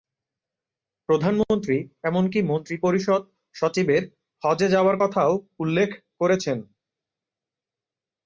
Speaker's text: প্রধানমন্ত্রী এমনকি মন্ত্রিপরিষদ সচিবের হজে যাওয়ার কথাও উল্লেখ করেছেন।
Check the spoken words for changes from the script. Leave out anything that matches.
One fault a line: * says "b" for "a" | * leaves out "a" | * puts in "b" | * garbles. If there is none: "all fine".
all fine